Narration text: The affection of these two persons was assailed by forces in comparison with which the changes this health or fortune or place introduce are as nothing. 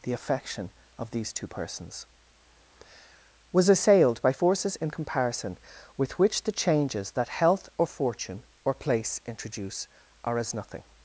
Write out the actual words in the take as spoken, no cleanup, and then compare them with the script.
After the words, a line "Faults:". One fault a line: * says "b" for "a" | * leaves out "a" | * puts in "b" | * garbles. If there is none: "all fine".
The affection of these two persons was assailed by forces in comparison with which the changes that health or fortune or place introduce are as nothing.
Faults:
* says "that" for "this"